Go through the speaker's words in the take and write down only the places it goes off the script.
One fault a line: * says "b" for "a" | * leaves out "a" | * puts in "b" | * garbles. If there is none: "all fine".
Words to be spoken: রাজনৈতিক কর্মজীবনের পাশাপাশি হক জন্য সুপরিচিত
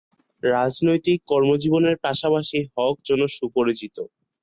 all fine